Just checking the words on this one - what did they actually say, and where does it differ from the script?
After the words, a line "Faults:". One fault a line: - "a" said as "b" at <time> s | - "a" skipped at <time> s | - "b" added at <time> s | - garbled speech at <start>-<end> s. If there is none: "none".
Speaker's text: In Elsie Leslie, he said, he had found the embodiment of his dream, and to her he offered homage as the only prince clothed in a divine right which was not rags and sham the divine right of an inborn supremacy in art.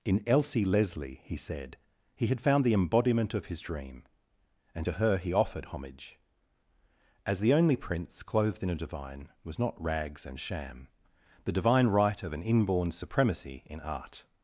In Elsie Leslie, he said, he had found the embodiment of his dream, and to her he offered homage as the only prince clothed in a divine was not rags and sham the divine right of an inborn supremacy in art.
Faults:
- "right which" skipped at 9.3 s